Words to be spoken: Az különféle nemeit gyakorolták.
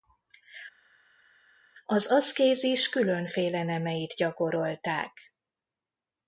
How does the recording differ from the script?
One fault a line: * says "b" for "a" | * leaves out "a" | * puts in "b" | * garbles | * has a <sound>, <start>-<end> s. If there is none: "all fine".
* puts in "aszkézis"